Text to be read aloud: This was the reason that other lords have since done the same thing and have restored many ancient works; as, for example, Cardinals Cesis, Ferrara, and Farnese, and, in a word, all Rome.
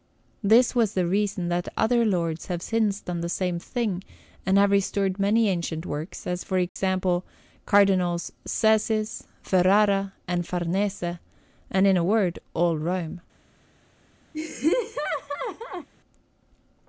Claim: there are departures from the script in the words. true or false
false